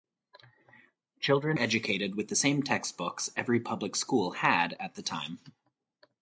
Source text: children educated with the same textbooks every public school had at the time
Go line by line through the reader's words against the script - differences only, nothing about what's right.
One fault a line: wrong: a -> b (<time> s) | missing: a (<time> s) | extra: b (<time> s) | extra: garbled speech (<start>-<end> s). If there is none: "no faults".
no faults